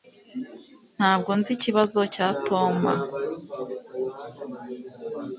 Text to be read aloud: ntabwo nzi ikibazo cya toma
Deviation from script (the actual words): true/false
false